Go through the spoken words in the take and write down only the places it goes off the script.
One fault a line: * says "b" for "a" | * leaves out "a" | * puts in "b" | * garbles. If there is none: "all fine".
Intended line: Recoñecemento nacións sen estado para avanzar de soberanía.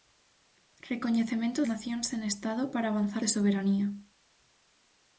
all fine